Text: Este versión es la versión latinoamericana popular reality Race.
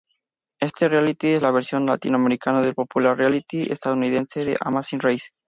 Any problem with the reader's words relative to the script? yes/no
yes